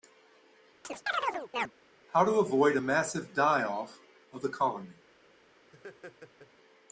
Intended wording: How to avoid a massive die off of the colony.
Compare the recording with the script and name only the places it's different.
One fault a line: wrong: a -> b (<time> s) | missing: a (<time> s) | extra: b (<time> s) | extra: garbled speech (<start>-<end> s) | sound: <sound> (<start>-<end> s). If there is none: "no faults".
sound: chirp (0.8-1.7 s)
sound: laugh (5.7-6.5 s)